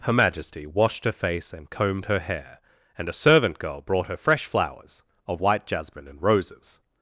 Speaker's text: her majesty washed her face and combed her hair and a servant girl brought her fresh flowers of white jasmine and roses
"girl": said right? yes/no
yes